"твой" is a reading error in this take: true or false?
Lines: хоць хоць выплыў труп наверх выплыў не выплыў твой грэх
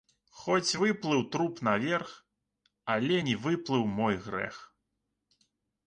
true